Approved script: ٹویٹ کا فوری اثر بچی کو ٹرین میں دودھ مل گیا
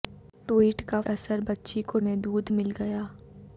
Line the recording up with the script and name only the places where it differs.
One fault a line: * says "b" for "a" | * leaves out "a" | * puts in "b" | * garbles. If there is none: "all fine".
* leaves out "فوری"
* leaves out "ٹرین"